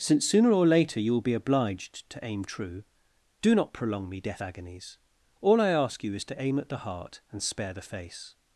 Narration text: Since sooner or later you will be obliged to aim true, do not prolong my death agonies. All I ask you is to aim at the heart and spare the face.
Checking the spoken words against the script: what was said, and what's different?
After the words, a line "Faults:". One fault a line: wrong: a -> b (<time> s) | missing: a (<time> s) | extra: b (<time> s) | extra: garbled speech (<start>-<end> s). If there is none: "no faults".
Since sooner or later you will be obliged to aim true, do not prolong me death agonies. All I ask you is to aim at the heart and spare the face.
Faults:
wrong: my -> me (4.1 s)